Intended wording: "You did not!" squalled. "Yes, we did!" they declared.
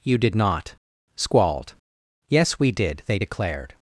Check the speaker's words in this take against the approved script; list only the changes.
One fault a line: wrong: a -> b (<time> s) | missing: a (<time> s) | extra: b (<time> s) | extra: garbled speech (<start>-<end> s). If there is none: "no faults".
no faults